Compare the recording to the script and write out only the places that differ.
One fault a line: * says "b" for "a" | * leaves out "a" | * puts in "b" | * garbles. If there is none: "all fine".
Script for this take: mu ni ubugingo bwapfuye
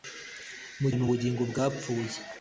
all fine